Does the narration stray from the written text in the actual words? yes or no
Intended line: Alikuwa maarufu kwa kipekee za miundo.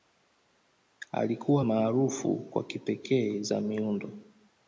no